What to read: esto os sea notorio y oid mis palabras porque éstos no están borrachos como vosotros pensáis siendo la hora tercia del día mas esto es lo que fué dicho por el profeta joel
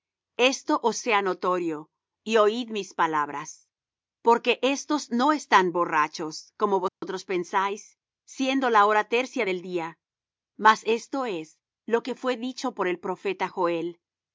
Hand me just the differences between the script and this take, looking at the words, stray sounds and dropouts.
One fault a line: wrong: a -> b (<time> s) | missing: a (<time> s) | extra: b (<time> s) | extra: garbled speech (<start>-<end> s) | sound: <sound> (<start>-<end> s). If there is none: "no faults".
sound: dropout (6.9-7.0 s)